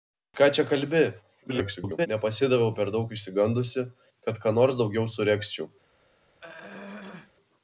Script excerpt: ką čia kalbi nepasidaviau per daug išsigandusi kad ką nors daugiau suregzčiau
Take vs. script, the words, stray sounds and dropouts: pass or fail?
fail